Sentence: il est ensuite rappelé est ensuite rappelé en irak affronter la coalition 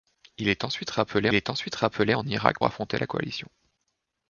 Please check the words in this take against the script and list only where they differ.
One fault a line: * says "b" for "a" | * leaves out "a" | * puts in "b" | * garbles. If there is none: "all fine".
all fine